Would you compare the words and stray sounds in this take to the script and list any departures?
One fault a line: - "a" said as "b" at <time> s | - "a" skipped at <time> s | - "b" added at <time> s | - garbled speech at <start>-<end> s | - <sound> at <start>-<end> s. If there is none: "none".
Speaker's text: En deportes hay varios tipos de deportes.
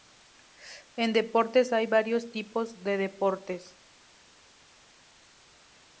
none